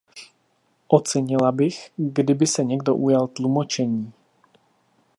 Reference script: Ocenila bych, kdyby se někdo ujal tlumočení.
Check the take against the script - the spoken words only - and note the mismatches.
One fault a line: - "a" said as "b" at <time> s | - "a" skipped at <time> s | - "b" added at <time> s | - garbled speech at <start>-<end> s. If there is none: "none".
none